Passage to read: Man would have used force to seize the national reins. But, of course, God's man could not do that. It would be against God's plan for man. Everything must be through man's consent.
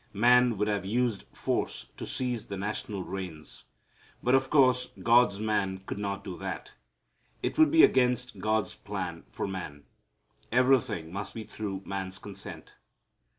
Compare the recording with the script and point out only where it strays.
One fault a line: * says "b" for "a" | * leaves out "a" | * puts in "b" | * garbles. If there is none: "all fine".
all fine